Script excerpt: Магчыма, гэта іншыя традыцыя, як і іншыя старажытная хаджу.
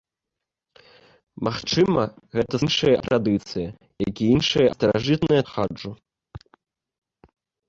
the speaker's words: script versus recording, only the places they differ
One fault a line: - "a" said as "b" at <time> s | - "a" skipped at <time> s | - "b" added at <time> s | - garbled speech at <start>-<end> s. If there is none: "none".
none